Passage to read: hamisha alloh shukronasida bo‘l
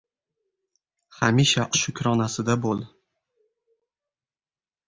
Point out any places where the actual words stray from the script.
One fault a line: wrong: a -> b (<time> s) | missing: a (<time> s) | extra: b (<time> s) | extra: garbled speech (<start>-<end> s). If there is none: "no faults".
missing: alloh (1.6 s)